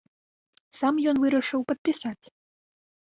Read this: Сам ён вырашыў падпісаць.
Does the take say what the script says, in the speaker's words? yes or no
yes